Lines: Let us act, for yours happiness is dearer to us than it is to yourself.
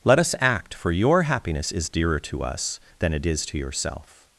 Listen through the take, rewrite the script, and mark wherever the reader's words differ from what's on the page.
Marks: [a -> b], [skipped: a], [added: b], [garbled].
Let us act, for [yours -> your] happiness is dearer to us than it is to yourself.